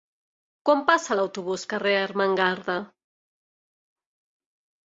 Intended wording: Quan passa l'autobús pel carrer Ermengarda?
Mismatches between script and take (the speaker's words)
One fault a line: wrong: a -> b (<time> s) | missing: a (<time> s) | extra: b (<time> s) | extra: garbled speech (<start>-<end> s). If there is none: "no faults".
missing: pel (1.6 s)